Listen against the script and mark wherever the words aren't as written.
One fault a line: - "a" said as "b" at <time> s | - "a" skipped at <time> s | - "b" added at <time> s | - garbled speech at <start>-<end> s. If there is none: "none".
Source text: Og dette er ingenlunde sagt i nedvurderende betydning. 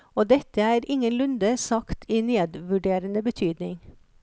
none